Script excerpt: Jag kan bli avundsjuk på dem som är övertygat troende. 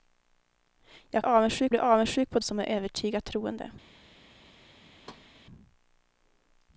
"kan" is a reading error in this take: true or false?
true